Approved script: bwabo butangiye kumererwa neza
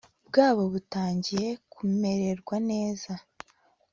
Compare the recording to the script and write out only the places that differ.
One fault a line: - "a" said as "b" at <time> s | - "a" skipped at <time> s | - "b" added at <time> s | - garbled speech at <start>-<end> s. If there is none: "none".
none